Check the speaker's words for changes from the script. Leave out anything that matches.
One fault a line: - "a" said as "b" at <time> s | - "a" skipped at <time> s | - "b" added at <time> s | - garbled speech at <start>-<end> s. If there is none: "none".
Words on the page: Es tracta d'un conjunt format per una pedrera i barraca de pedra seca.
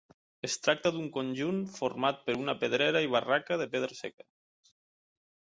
none